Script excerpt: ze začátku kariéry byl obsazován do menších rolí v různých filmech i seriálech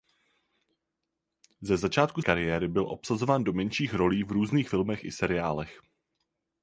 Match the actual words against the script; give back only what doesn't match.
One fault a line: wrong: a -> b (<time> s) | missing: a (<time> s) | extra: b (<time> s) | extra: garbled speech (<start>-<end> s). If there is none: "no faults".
no faults